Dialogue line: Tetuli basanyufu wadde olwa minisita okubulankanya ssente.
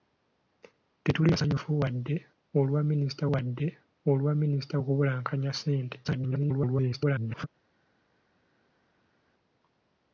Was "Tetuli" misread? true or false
false